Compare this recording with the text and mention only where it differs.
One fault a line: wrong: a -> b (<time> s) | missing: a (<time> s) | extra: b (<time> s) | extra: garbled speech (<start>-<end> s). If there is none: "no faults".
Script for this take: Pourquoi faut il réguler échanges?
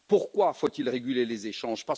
extra: les (1.2 s)